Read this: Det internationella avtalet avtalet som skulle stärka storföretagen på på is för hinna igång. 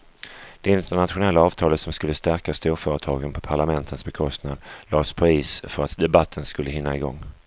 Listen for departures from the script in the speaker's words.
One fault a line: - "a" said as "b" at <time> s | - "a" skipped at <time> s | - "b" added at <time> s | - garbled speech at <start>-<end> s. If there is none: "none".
- "avtalet" skipped at 1.8 s
- "parlamentens bekostnad lades" added at 3.4 s
- "att debatten skulle" added at 5.8 s